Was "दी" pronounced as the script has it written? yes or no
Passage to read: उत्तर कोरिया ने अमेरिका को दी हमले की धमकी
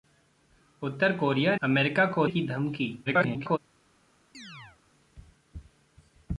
no